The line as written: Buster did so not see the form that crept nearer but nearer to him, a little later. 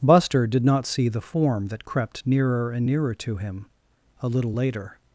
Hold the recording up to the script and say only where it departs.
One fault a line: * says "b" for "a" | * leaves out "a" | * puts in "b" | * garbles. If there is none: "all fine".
* leaves out "so"
* says "and" for "but"